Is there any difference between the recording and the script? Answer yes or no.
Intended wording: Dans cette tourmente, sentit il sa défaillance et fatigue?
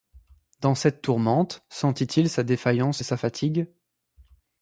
yes